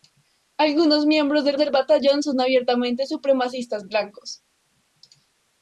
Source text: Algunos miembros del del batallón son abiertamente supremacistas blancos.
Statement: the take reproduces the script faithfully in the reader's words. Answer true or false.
true